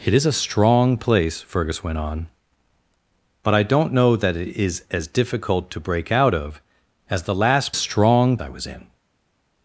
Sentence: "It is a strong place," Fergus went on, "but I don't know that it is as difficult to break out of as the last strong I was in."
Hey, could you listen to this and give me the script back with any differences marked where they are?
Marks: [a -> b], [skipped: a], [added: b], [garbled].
"It is a strong place," Fergus went on, "but I don't know that it is as difficult to break out of as the last strong I was in."